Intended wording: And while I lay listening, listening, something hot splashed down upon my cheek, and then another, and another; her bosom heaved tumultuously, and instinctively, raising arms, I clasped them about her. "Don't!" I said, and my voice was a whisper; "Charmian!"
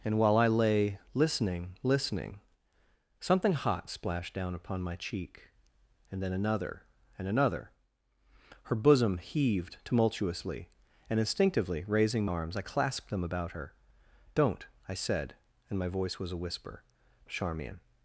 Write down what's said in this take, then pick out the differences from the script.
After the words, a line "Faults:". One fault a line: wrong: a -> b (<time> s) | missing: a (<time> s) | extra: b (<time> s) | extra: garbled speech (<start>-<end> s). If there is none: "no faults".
And while I lay listening, listening, something hot splashed down upon my cheek, and then another, and another; her bosom heaved tumultuously, and instinctively, raising arms, I clasped them about her. "Don't!" I said, and my voice was a whisper; "Charmian!"
Faults:
no faults